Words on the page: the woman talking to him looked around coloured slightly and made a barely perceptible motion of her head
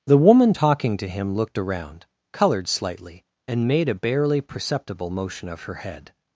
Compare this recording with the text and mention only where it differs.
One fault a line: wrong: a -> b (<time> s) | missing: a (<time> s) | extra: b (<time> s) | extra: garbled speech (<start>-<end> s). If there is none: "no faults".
no faults